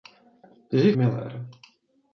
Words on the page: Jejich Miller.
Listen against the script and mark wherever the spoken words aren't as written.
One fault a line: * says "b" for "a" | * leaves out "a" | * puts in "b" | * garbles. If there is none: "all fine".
all fine